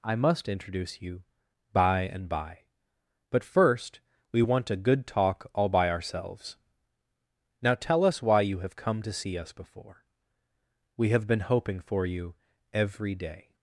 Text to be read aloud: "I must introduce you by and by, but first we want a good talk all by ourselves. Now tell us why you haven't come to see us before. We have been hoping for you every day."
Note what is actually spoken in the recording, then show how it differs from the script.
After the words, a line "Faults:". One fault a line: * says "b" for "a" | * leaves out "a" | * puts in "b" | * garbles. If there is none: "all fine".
"I must introduce you by and by, but first we want a good talk all by ourselves. Now tell us why you have come to see us before. We have been hoping for you every day."
Faults:
* says "have" for "haven't"